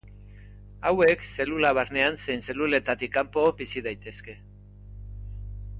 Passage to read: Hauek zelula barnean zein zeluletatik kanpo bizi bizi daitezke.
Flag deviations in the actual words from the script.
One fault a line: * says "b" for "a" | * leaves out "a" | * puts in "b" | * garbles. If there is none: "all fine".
* leaves out "bizi"